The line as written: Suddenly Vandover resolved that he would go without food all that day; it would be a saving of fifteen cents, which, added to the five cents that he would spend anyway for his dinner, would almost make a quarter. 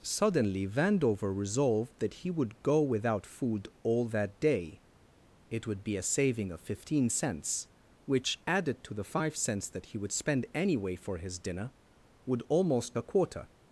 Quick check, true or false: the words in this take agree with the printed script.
false